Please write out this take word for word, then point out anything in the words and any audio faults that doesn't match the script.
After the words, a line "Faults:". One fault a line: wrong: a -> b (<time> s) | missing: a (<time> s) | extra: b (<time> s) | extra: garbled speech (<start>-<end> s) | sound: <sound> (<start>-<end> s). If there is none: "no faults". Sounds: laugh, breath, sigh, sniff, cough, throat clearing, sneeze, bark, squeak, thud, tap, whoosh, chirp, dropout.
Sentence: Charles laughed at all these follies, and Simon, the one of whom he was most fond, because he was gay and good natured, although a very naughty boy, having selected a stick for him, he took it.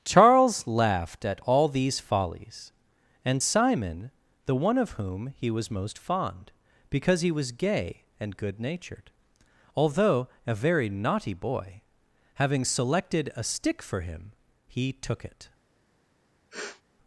Charles laughed at all these follies, and Simon, the one of whom he was most fond, because he was gay and good natured, although a very naughty boy, having selected a stick for him, he took it.
Faults:
sound: sniff (16.5-16.8 s)